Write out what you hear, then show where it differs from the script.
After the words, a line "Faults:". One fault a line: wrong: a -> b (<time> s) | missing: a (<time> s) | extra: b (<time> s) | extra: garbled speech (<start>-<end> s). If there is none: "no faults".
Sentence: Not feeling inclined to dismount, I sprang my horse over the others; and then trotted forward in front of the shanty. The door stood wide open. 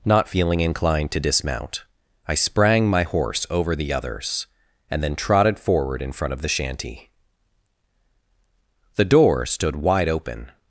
Not feeling inclined to dismount, I sprang my horse over the others; and then trotted forward in front of the shanty. The door stood wide open.
Faults:
no faults